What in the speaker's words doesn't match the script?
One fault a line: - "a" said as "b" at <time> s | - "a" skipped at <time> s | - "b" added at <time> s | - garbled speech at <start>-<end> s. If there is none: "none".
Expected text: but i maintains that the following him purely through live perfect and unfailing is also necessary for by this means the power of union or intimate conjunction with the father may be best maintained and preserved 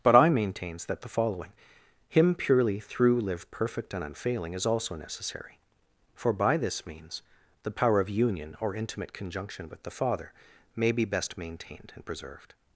none